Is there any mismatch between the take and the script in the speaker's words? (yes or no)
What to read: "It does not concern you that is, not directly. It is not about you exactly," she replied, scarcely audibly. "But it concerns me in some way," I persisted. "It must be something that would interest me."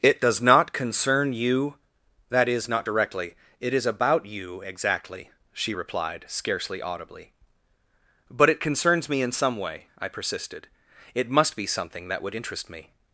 yes